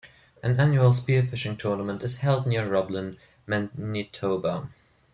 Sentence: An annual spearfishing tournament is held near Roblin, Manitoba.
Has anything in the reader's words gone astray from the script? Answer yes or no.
no